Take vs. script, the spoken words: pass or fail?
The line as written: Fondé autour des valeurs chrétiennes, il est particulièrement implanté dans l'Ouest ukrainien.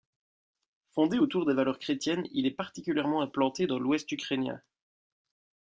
pass